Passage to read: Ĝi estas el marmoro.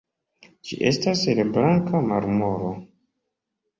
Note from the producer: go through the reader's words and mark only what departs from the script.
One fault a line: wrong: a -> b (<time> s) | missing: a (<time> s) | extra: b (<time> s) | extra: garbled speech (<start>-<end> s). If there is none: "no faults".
extra: blanka (1.6 s)